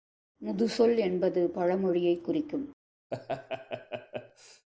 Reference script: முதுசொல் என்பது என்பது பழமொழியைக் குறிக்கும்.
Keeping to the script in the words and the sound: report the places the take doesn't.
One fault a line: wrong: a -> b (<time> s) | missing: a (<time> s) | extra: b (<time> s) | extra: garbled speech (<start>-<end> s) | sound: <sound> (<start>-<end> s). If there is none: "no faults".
missing: என்பது (1.5 s)
sound: laugh (3.1-4.7 s)